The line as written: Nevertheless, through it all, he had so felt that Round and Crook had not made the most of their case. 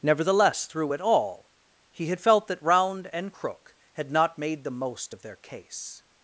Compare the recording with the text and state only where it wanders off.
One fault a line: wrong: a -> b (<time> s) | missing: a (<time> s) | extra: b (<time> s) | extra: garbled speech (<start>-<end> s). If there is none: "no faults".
missing: so (2.2 s)